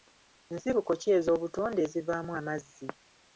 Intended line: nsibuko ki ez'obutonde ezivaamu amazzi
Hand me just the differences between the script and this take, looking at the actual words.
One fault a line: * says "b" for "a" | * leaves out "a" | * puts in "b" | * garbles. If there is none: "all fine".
all fine